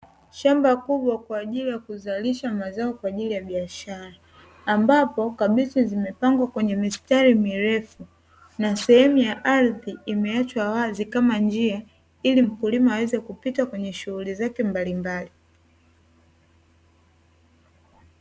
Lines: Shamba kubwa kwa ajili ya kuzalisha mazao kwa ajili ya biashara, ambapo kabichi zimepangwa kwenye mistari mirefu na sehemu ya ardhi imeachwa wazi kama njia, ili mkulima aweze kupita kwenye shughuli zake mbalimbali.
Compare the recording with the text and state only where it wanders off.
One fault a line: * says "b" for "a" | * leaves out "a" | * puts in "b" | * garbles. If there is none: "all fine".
all fine